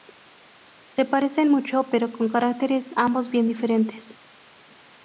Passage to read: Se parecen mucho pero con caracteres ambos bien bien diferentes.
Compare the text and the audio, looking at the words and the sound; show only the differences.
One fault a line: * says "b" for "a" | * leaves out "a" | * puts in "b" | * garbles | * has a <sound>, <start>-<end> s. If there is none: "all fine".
* leaves out "bien"